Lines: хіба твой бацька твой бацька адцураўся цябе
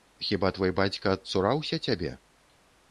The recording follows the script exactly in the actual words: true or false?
false